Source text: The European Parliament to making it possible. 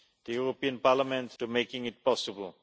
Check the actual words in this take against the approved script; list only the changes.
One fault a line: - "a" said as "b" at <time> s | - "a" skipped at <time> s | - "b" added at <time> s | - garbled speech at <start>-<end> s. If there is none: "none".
none